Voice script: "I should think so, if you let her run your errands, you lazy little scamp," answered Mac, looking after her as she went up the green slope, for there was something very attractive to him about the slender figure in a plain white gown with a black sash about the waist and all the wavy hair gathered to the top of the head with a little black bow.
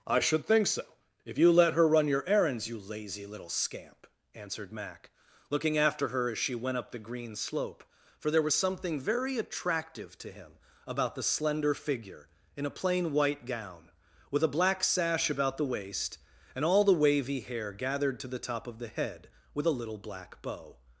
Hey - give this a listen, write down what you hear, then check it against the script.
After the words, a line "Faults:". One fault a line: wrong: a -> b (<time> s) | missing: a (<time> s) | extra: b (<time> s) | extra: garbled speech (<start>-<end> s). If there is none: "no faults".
"I should think so, if you let her run your errands, you lazy little scamp," answered Mac, looking after her as she went up the green slope, for there was something very attractive to him about the slender figure in a plain white gown with a black sash about the waist and all the wavy hair gathered to the top of the head with a little black bow.
Faults:
no faults